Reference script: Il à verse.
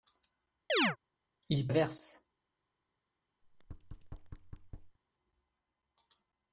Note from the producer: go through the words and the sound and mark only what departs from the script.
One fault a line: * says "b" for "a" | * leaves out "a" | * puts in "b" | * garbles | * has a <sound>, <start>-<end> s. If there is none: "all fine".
* has a chirp, 0.7-1.0 s
* has a thud, 3.4-5.0 s